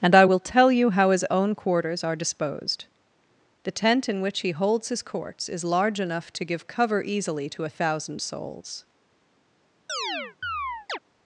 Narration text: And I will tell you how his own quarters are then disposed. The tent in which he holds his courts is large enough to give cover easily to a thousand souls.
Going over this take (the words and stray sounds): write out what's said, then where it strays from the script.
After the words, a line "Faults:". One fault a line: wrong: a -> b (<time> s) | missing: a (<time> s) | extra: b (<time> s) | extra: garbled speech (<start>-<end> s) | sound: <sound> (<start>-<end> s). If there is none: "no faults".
And I will tell you how his own quarters are disposed. The tent in which he holds his courts is large enough to give cover easily to a thousand souls.
Faults:
missing: then (2.2 s)
sound: chirp (9.9-11.0 s)